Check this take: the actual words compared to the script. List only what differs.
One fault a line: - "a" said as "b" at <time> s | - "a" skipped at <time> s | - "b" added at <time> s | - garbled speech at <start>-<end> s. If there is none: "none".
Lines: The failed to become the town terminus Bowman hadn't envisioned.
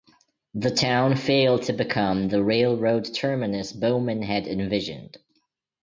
- "town" added at 0.7 s
- "town" said as "railroad" at 2.4 s
- "hadn't" said as "had" at 4.2 s